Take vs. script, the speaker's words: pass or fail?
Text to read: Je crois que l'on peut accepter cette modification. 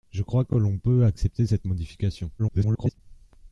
fail